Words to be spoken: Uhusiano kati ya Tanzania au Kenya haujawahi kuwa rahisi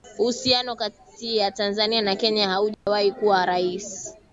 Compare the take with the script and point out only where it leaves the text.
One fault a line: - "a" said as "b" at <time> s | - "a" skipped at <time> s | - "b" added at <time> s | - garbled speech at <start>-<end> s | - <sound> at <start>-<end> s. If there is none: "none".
- "au" said as "na" at 2.0 s
- dropout at 2.7-2.9 s